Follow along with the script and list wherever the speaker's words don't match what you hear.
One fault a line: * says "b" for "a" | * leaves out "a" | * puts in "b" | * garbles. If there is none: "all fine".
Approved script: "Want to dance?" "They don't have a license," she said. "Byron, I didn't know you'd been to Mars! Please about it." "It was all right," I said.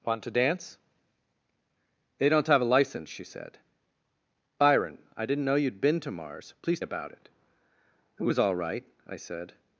all fine